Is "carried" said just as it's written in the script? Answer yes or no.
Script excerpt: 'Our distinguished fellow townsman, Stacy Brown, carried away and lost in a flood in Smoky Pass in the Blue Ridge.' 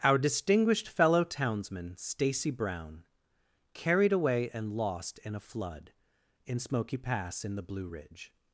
yes